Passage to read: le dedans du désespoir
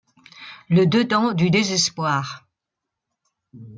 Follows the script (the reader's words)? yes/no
yes